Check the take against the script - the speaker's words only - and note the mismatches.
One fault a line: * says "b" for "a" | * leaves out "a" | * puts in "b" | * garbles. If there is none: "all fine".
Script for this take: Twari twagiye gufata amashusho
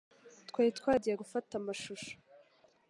all fine